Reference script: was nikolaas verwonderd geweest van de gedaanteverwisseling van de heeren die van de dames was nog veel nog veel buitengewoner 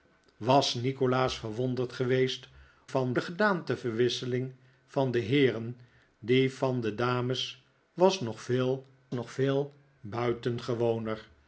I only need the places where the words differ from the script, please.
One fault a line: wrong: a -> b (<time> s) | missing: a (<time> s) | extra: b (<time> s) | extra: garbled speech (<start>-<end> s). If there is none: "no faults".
no faults